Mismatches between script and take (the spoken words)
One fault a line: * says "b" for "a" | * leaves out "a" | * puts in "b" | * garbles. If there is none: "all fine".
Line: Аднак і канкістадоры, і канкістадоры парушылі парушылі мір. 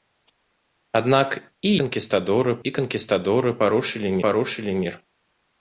all fine